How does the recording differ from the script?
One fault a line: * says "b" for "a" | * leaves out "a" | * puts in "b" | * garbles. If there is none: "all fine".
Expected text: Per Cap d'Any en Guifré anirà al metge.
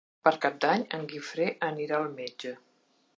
all fine